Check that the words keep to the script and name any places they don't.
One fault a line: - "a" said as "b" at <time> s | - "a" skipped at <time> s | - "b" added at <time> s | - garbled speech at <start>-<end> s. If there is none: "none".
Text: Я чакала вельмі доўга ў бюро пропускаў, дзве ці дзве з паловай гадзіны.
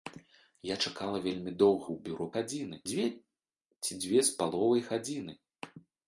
- "пропускаў" said as "гадзіны" at 2.3 s